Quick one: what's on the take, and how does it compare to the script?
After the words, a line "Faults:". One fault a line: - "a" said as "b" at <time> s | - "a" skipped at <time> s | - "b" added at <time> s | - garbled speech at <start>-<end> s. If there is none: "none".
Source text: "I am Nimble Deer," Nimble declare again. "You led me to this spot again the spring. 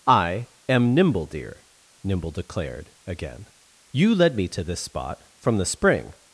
"I am Nimble Deer," Nimble declared again. "You led me to this spot from the spring.
Faults:
- "declare" said as "declared" at 2.3 s
- "again" said as "from" at 5.4 s